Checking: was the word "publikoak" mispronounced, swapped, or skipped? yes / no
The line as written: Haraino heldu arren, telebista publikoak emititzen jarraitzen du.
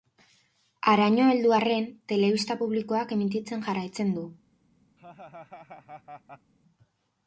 no